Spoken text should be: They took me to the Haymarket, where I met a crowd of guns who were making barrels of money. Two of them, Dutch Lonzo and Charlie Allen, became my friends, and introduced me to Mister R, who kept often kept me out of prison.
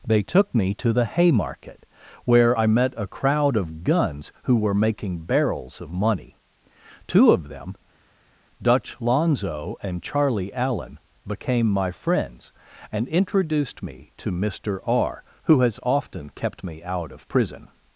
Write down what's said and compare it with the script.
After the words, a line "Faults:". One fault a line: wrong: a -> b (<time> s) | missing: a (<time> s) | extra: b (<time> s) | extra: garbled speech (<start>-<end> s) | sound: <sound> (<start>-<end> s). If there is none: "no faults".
They took me to the Haymarket, where I met a crowd of guns who were making barrels of money. Two of them, Dutch Lonzo and Charlie Allen, became my friends, and introduced me to Mister R, who has often kept me out of prison.
Faults:
wrong: kept -> has (15.6 s)